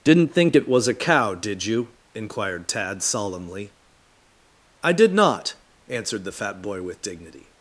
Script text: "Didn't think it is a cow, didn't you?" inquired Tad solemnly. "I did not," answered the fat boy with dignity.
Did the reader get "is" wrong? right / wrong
wrong